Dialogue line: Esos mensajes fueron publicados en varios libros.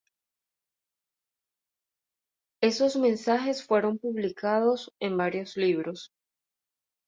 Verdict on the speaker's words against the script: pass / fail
pass